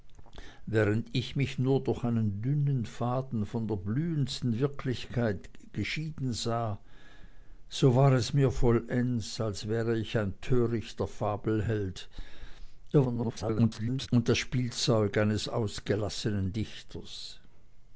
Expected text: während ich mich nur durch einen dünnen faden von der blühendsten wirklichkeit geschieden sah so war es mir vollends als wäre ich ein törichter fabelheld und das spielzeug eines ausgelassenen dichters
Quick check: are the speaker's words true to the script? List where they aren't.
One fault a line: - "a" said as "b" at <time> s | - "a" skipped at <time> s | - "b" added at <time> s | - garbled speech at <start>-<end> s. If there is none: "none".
- garbled speech at 12.9-14.1 s